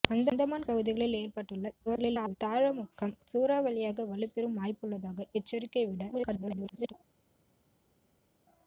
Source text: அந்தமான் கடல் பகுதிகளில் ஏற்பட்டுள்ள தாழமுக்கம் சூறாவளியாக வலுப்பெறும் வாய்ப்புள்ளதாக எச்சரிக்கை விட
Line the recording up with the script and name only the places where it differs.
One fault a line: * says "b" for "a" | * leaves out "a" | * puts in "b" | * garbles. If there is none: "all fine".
* leaves out "கடல்"
* garbles
* garbles